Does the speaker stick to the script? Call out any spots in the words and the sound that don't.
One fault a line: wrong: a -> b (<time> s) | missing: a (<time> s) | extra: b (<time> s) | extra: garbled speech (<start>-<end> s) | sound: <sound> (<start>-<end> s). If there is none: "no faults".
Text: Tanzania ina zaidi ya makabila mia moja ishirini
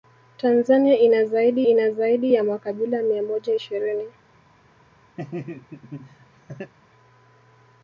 extra: ina zaidi (1.6 s)
sound: laugh (5.2-6.7 s)